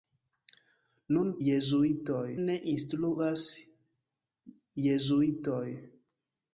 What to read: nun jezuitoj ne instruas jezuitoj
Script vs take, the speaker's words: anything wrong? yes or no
no